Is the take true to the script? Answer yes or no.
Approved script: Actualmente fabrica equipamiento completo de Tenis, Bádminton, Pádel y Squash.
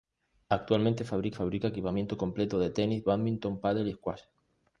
no